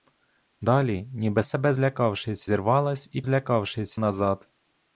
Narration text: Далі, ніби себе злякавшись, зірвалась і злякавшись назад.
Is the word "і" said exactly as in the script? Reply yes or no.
yes